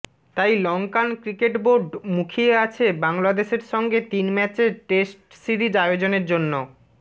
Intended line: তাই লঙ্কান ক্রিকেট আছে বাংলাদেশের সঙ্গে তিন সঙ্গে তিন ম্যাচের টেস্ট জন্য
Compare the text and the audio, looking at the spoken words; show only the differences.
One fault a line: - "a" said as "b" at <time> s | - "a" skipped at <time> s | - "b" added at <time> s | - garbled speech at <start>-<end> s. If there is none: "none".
- "বোর্ড মুখিয়ে" added at 1.6 s
- "সঙ্গে তিন ম্যাচের টেস্ট" said as "ম্যাচের টেস্ট সিরিজ আয়োজনের" at 4.3 s